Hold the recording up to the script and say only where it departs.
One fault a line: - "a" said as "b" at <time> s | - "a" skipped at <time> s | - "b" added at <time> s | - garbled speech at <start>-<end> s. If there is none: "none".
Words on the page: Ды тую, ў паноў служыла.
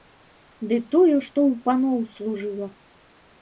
- "што" added at 1.3 s